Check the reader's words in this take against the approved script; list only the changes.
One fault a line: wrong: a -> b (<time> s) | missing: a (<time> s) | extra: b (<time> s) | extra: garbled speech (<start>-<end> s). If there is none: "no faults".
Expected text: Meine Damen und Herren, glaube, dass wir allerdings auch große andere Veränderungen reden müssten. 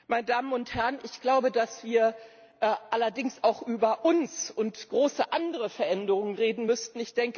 extra: ich (1.0 s)
extra: über uns und (3.6 s)